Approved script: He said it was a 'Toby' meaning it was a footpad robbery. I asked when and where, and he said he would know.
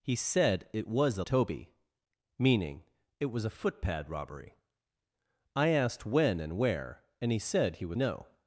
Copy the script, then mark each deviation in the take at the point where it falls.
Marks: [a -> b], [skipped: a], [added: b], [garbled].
He said it was a 'Toby' meaning it was a footpad robbery. I asked when and where, and he said he would know.